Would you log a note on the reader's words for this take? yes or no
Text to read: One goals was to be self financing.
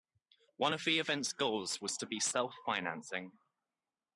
yes